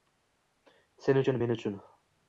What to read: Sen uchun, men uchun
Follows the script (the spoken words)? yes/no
yes